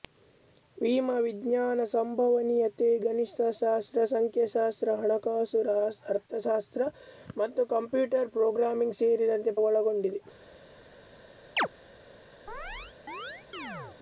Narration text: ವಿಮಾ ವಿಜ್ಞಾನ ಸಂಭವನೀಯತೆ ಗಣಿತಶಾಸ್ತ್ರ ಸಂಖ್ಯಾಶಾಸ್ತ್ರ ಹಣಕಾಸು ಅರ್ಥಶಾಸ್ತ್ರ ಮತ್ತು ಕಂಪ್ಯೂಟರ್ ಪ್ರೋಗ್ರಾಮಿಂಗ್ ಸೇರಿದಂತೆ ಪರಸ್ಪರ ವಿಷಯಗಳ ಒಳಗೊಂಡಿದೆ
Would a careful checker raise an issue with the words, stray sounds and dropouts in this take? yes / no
yes